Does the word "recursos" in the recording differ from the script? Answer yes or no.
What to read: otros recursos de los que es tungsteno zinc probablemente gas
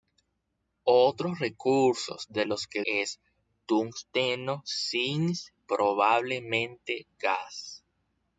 no